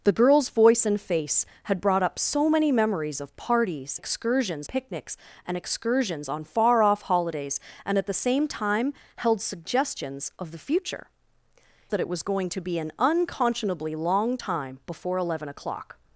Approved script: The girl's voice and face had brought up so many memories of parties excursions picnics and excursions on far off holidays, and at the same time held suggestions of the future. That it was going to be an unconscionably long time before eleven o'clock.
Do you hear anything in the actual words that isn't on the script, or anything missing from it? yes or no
no